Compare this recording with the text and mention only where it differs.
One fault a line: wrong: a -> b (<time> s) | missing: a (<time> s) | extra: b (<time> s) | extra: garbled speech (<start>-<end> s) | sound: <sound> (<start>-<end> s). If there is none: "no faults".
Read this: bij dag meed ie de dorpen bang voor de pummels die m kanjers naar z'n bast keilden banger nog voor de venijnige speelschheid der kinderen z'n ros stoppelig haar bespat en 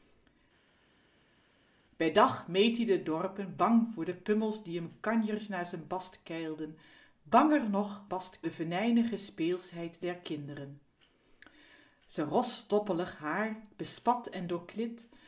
wrong: voor -> bast (8.1 s)